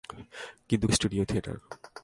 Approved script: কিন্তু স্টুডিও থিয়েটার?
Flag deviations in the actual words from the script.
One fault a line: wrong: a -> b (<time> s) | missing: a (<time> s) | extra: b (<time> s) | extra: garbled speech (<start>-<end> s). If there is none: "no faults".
no faults